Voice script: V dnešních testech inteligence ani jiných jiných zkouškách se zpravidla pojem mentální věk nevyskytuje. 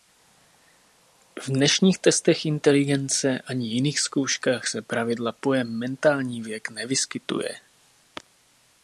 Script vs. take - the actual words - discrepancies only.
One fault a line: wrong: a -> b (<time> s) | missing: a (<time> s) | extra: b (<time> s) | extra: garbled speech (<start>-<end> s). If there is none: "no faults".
missing: jiných (4.0 s)